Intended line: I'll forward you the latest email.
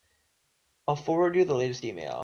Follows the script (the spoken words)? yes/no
yes